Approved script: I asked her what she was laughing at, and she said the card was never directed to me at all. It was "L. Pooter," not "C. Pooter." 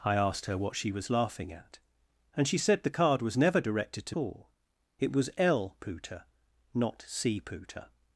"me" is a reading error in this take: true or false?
true